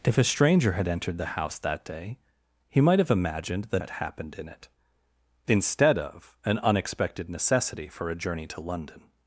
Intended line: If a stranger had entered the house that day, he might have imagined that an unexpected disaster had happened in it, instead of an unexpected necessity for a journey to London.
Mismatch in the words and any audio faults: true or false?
true